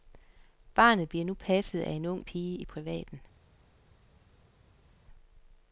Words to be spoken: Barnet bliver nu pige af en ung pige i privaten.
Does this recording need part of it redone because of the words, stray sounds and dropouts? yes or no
yes